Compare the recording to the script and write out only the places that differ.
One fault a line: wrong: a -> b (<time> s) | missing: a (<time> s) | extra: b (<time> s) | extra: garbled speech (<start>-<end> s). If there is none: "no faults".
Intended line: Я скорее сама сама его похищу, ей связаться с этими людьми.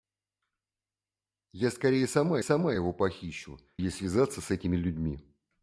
no faults